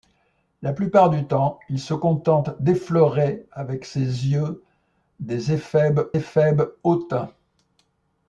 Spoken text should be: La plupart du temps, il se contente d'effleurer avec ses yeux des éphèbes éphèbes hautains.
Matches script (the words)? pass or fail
pass